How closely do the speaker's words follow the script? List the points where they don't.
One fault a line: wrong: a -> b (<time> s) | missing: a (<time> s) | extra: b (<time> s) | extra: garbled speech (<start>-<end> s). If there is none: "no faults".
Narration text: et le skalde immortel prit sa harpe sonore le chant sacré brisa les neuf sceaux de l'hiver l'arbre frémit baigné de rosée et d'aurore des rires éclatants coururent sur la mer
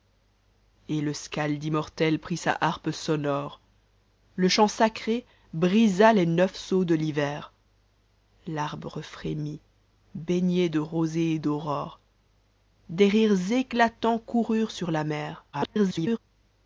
extra: garbled speech (15.5-16.2 s)